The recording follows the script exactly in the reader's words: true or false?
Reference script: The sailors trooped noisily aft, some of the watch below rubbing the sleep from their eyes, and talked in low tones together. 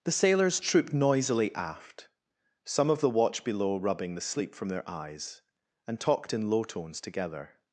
true